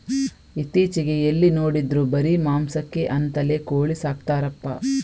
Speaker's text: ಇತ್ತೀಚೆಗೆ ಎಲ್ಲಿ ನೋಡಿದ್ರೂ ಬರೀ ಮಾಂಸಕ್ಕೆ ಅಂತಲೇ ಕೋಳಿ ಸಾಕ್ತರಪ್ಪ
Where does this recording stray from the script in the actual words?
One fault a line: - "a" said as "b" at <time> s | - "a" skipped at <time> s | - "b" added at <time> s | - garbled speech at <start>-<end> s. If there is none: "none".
none